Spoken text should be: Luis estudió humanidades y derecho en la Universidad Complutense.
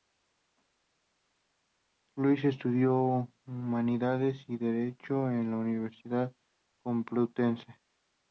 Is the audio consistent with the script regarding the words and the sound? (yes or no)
yes